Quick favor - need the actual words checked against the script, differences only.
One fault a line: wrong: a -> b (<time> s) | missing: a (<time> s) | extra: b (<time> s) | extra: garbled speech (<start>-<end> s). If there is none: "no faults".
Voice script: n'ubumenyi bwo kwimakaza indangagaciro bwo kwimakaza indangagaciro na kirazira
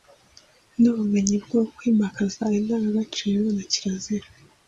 missing: bwo kwimakaza indangagaciro (3.4 s)